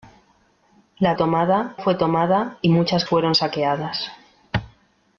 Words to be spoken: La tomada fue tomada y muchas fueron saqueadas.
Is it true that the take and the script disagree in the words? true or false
false